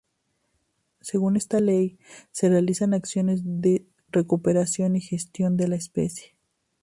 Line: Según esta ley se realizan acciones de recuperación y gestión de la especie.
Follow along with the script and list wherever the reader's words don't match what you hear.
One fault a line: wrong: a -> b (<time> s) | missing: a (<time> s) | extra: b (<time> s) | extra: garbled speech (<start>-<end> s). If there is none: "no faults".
no faults